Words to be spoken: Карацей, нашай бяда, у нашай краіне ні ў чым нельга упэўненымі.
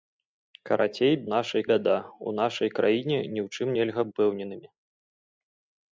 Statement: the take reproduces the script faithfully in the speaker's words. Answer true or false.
true